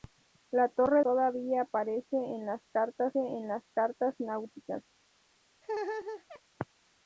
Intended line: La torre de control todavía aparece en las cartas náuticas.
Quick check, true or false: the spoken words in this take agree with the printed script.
false